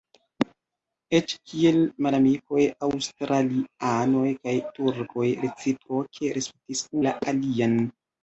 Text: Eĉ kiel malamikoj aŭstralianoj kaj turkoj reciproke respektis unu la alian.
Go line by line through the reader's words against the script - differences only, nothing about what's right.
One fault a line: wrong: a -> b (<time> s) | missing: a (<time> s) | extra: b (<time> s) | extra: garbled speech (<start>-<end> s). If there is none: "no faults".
missing: unu (6.8 s)